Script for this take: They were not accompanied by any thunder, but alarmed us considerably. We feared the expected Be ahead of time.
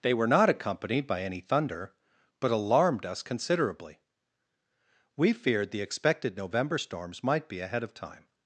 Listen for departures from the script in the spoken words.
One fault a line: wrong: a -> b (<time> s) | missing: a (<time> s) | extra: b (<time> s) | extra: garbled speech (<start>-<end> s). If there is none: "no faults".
extra: November storms might (6.4 s)